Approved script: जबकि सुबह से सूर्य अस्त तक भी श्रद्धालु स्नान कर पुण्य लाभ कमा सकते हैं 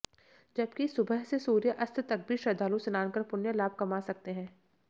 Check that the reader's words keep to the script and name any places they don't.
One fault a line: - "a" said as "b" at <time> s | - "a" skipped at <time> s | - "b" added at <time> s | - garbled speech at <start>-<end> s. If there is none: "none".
none